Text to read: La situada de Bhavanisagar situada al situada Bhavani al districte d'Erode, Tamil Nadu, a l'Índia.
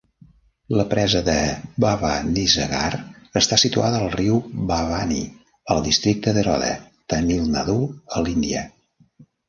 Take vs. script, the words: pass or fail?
fail